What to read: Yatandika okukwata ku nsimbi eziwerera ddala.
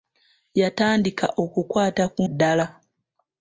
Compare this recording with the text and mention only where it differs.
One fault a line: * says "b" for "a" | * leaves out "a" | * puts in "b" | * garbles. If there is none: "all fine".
* leaves out "nsimbi eziwerera"